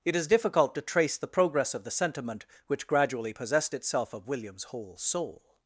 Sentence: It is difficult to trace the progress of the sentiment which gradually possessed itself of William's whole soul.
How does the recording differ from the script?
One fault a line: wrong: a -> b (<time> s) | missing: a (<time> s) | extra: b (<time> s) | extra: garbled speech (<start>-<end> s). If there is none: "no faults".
no faults